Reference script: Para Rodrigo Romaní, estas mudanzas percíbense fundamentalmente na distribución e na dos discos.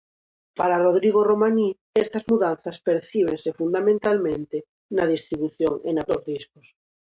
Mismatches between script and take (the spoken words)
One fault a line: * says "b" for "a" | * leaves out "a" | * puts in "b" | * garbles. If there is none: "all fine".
all fine